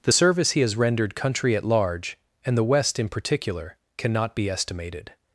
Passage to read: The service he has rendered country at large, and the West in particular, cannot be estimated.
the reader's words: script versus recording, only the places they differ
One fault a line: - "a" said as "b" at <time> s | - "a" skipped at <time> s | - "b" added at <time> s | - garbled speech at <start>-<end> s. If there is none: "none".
none